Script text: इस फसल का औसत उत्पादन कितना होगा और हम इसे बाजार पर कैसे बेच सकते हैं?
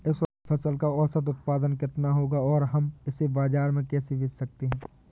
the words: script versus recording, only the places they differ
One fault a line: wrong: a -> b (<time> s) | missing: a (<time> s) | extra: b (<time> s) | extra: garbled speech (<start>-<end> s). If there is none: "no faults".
wrong: पर -> में (3.7 s)